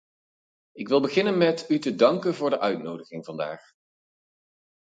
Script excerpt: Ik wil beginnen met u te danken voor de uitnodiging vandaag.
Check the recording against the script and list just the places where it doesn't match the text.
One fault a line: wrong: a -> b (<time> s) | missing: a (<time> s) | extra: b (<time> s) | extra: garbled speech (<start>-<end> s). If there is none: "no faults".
no faults